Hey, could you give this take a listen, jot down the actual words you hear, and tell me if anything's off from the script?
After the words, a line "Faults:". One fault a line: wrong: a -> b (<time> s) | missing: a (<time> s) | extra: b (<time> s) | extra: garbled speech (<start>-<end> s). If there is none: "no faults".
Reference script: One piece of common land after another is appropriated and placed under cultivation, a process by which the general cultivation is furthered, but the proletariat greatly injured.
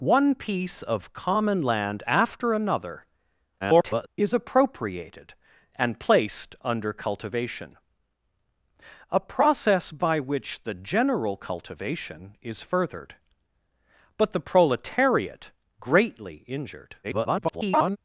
One piece of common land after another [garbled] is appropriated and placed under cultivation, a process by which the general cultivation is furthered, but the proletariat greatly injured. [garbled]
Faults:
extra: garbled speech (3.6-4.1 s)
extra: garbled speech (17.0-18.0 s)